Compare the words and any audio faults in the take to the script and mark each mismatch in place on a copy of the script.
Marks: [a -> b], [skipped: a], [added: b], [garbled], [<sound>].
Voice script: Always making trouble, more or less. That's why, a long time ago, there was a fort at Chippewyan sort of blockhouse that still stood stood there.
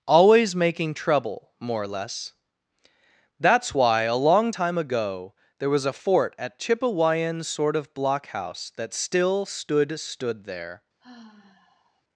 Always making trouble, more or less. That's why, a long time ago, there was a fort at Chippewyan sort of blockhouse that still stood stood there. [sigh]